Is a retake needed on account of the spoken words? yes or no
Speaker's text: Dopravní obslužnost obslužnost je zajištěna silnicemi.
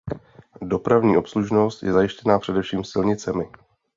yes